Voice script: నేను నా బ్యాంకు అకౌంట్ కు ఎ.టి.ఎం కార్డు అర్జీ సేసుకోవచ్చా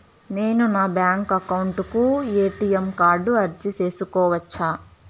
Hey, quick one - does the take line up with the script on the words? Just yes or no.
yes